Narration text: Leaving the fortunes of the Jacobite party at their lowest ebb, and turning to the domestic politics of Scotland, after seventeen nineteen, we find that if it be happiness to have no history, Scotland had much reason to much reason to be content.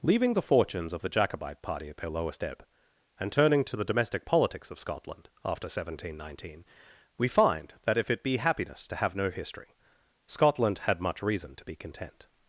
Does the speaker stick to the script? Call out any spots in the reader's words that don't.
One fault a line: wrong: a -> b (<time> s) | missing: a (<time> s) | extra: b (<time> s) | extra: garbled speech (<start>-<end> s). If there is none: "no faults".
missing: much reason to (11.7 s)